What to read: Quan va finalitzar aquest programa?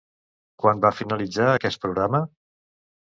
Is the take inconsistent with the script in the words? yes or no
no